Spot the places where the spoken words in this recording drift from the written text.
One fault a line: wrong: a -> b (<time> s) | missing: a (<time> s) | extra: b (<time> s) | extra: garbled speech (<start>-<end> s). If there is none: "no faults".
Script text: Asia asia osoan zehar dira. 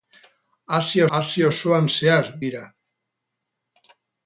no faults